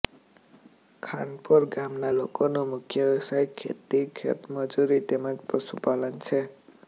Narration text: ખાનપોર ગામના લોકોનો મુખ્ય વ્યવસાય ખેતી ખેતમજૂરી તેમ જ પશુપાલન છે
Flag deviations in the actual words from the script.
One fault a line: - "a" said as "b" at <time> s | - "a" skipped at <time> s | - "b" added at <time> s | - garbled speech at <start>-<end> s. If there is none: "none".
none